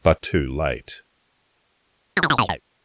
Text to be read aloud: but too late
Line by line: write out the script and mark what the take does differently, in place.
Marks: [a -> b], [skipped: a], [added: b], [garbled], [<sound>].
but too late [chirp]